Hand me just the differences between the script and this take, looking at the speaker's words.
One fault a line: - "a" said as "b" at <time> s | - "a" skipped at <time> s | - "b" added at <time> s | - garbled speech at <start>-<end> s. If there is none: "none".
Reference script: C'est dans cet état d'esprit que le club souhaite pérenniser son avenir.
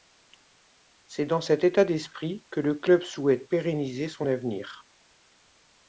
none